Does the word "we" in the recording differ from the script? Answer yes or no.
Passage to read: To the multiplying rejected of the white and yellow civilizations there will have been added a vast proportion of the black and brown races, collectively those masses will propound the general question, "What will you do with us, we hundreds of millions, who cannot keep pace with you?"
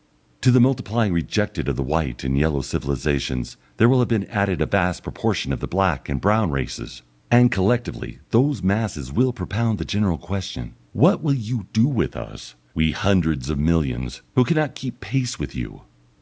no